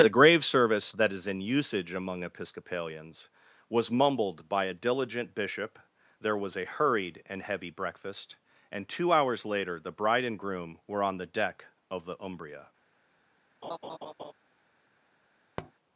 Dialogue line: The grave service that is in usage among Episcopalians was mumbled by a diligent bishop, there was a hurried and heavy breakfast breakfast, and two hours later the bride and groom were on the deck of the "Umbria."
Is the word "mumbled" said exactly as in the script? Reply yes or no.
yes